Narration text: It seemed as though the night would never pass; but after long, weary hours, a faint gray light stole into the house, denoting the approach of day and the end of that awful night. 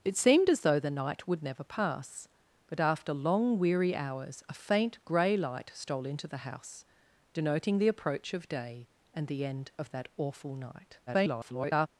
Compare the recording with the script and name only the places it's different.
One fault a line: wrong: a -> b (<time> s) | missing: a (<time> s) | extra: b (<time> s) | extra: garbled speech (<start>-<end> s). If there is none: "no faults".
extra: garbled speech (11.1-11.9 s)